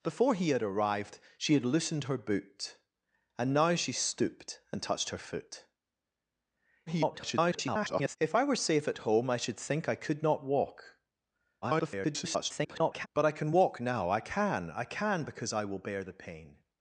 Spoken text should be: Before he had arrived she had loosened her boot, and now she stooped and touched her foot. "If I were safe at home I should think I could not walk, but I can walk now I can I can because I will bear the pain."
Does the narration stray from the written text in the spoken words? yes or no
yes